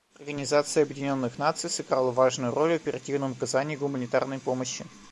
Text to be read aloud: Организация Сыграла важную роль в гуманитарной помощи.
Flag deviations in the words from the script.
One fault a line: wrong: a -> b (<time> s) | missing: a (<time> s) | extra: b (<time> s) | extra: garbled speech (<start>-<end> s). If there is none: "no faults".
extra: Объединенных Наций (0.8 s)
extra: оперативном оказании (2.8 s)